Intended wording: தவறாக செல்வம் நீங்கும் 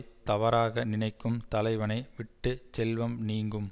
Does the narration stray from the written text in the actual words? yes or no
yes